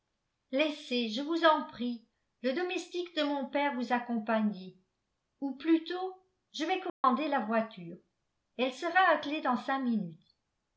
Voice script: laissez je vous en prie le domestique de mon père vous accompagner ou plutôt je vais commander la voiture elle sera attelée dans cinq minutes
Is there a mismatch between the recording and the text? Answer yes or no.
no